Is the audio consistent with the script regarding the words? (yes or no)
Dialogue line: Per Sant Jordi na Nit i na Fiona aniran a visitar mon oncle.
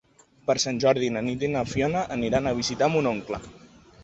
yes